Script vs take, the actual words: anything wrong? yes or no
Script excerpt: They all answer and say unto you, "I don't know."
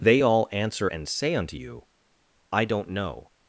no